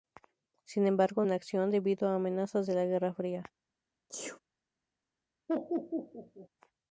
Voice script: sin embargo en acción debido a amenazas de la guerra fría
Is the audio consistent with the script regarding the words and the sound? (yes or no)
no